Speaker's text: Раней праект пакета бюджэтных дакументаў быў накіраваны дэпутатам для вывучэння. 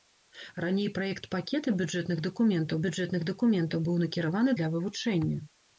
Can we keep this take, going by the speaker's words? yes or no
no